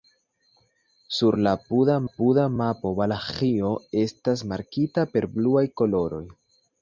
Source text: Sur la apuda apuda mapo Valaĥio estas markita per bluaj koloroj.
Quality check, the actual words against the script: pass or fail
pass